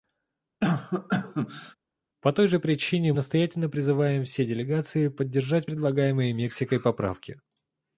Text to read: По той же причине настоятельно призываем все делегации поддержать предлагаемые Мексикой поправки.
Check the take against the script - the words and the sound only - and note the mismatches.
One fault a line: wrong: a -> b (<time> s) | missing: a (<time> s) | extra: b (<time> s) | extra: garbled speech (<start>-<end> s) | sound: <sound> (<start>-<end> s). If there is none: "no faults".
sound: cough (0.6-1.8 s)